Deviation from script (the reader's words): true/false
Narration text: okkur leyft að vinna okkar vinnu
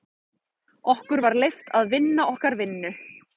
true